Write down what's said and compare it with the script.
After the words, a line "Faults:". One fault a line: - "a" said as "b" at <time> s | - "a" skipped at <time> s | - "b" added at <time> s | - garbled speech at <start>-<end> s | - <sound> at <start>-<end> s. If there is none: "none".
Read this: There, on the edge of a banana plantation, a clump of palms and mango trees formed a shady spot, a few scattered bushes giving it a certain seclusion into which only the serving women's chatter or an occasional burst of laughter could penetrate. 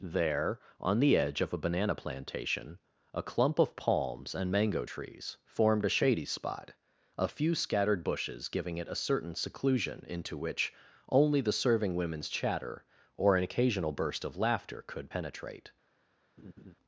There, on the edge of a banana plantation, a clump of palms and mango trees formed a shady spot, a few scattered bushes giving it a certain seclusion into which only the serving women's chatter or an occasional burst of laughter could penetrate.
Faults:
- laugh at 16.4-16.7 s